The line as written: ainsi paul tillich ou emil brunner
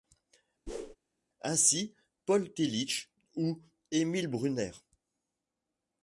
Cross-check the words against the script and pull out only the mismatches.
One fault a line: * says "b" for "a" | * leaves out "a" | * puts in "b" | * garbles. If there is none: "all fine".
all fine